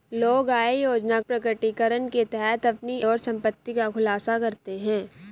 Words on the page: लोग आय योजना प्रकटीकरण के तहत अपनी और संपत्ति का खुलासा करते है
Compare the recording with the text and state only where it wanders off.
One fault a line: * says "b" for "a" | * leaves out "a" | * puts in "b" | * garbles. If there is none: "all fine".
all fine